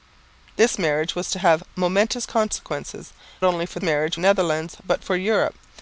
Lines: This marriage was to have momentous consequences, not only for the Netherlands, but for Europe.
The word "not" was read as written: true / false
false